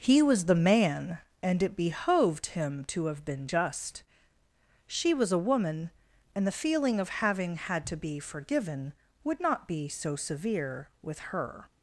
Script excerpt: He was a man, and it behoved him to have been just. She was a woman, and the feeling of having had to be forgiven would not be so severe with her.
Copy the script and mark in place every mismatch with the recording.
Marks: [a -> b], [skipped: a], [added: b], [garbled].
He was [a -> the] man, and it behoved him to have been just. She was a woman, and the feeling of having had to be forgiven would not be so severe with her.